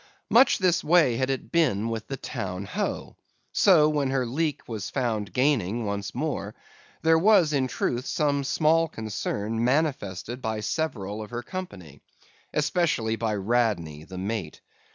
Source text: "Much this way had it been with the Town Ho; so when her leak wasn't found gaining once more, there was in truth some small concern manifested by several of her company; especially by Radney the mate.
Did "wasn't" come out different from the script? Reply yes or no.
yes